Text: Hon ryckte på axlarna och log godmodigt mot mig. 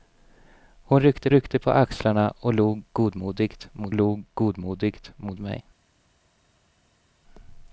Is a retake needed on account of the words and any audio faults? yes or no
yes